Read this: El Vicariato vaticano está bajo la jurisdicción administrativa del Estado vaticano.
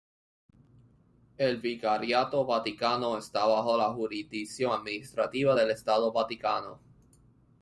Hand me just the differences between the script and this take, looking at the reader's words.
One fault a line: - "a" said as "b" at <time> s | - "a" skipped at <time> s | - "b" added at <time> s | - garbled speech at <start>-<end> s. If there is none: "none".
none